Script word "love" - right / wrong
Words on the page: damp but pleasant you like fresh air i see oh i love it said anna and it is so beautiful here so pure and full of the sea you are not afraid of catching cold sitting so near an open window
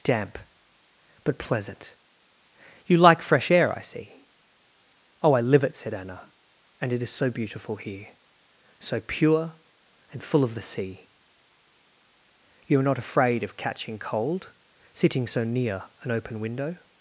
wrong